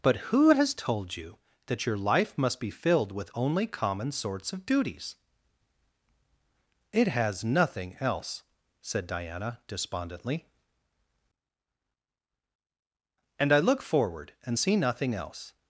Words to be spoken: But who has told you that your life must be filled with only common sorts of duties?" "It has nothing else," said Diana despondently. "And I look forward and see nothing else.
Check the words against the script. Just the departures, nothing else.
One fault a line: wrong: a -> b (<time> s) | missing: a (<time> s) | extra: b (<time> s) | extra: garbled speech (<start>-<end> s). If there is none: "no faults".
no faults